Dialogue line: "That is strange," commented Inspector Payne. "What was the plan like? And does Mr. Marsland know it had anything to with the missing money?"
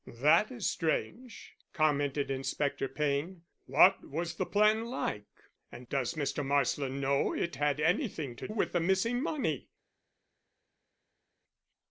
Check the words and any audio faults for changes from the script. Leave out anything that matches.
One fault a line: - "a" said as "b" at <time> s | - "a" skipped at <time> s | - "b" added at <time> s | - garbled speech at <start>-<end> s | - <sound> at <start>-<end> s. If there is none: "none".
none